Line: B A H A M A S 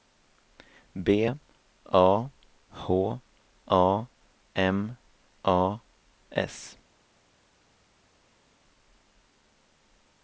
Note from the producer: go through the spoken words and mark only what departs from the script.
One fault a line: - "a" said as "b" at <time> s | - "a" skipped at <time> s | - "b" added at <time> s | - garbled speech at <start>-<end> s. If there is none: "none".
none